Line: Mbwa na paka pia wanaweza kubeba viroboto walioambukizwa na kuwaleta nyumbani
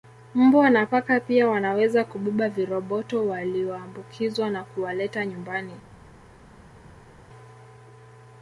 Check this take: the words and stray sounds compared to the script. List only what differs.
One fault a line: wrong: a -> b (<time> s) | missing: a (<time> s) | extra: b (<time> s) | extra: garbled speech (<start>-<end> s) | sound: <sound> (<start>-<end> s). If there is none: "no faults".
no faults